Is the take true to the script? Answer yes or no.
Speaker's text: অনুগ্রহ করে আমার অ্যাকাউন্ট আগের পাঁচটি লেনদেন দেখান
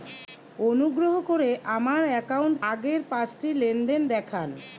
yes